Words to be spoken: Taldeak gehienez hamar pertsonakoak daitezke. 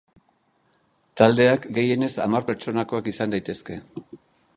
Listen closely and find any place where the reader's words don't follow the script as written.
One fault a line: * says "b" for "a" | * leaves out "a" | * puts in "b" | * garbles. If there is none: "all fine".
* puts in "izan"